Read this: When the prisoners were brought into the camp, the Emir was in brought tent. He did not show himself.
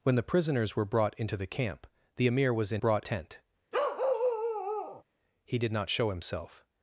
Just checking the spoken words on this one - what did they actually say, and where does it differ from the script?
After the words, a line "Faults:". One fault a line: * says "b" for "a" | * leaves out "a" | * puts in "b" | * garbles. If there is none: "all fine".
When the prisoners were brought into the camp, the Emir was in brought tent. He did not show himself.
Faults:
all fine